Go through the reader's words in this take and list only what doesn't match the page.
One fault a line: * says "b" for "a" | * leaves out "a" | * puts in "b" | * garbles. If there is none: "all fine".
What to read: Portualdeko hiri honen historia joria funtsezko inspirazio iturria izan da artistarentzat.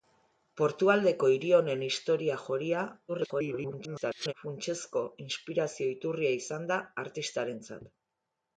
* garbles